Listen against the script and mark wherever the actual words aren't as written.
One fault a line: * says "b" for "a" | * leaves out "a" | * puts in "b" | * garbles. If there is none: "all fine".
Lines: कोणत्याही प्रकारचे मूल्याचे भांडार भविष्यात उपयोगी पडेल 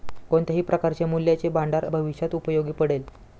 all fine